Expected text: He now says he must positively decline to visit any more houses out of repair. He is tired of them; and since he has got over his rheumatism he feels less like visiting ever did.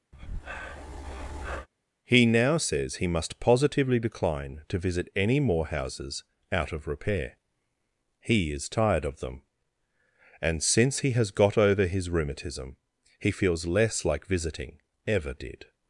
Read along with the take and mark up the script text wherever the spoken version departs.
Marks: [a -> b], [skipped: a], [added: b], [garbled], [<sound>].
[breath] He now says he must positively decline to visit any more houses out of repair. He is tired of them; and since he has got over his rheumatism he feels less like visiting ever did.